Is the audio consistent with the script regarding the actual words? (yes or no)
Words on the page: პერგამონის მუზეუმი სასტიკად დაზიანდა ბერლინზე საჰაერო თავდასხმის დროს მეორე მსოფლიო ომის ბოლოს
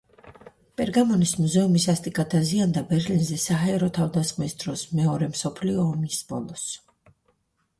yes